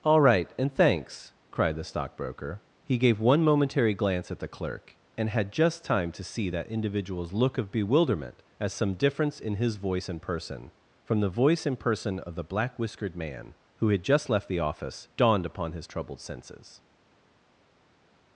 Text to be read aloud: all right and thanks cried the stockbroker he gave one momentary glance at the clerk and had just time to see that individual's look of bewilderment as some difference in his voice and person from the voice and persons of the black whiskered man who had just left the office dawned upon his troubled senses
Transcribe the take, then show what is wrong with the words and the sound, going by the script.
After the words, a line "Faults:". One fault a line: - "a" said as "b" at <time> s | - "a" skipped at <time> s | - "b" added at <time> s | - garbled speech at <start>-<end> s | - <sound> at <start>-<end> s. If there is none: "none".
all right and thanks cried the stockbroker he gave one momentary glance at the clerk and had just time to see that individual's look of bewilderment as some difference in his voice and person from the voice and person of the black whiskered man who had just left the office dawned upon his troubled senses
Faults:
- "persons" said as "person" at 11.8 s